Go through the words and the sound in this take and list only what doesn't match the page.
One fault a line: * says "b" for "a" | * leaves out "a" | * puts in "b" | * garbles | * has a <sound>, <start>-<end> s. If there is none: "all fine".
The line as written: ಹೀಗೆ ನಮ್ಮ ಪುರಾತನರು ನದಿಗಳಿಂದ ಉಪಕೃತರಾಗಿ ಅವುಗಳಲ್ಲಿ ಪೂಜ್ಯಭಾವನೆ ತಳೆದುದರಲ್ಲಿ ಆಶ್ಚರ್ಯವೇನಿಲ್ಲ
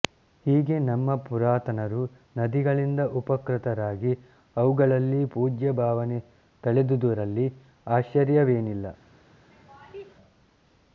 * has a laugh, 9.5-10.1 s